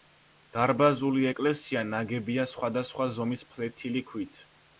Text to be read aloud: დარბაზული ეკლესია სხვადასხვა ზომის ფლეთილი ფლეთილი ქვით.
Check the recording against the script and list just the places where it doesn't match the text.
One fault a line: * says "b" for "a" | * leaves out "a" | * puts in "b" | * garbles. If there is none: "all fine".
* puts in "ნაგებია"
* leaves out "ფლეთილი"